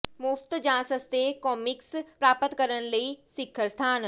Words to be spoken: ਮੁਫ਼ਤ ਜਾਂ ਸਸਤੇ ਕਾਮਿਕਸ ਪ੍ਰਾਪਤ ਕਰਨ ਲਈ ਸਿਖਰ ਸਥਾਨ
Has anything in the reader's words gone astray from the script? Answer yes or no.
no